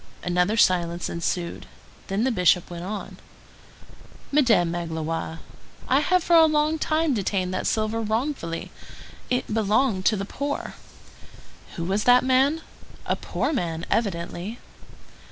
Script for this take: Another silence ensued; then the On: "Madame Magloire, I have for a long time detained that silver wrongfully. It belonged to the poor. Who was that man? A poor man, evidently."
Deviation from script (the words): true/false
true